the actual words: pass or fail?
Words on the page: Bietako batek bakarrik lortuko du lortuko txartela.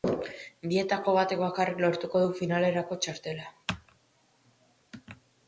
fail